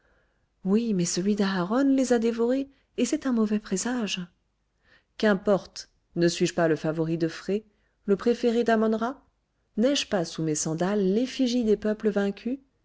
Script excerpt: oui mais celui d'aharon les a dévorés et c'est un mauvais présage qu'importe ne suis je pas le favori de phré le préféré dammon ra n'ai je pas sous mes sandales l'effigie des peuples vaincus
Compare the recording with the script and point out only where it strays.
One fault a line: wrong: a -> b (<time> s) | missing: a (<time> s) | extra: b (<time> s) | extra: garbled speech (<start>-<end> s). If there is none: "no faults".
no faults